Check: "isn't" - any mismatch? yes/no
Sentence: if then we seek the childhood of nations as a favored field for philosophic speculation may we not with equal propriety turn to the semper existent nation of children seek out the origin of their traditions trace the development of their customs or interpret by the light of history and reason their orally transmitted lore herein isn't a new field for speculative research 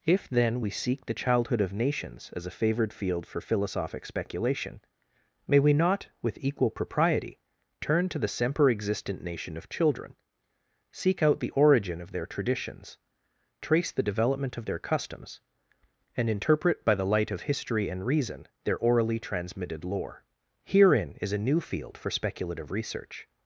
yes